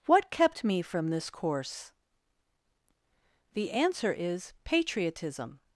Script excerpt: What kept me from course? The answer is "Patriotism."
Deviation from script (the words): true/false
true